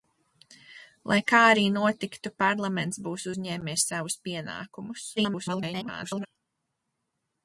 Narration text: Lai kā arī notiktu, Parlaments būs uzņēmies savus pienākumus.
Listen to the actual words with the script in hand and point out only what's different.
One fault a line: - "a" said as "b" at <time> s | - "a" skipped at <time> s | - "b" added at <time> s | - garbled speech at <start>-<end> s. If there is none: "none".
- garbled speech at 5.2-6.3 s